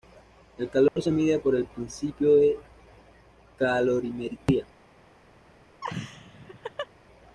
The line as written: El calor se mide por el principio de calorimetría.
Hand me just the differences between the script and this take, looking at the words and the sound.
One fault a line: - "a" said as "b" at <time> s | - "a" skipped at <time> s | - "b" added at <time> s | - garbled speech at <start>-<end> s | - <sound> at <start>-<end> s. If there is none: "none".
- dropout at 0.9-1.0 s
- laugh at 5.8-6.9 s